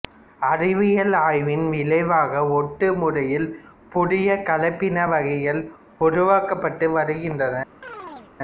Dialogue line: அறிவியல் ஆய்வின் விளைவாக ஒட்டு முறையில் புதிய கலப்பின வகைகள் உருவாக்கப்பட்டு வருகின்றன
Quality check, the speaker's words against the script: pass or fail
pass